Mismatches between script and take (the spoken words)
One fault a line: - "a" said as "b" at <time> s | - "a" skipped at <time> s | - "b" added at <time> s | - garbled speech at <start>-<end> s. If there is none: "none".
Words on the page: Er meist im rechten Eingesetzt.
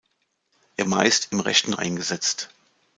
none